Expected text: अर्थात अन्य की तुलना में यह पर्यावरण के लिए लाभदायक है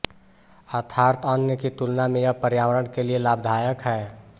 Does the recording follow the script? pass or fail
pass